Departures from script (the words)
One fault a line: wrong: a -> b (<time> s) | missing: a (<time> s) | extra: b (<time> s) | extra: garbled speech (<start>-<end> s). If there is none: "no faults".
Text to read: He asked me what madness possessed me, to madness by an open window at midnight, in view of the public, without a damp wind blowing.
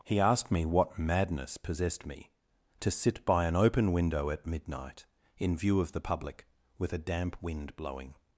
wrong: madness -> sit (2.9 s)
wrong: without -> with (6.8 s)